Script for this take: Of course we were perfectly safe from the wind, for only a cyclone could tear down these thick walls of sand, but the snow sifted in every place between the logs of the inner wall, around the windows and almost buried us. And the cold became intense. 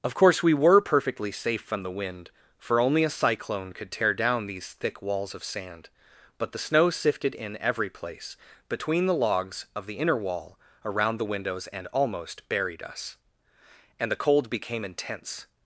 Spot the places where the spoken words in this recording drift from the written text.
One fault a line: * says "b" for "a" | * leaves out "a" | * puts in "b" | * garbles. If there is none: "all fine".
all fine